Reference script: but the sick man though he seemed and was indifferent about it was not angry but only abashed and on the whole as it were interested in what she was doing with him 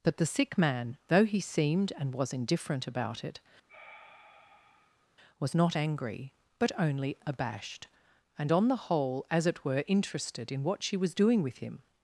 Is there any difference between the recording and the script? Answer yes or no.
no